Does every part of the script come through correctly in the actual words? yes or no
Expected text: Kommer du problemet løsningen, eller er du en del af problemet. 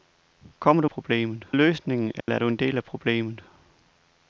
yes